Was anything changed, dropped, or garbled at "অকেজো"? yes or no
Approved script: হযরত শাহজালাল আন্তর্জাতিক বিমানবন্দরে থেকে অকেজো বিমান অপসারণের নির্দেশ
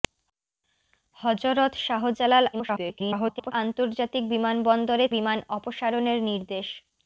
yes